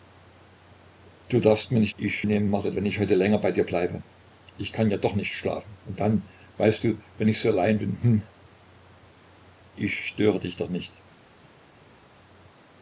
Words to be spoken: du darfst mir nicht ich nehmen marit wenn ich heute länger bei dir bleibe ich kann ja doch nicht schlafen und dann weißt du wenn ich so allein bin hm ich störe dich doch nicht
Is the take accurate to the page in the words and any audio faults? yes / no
yes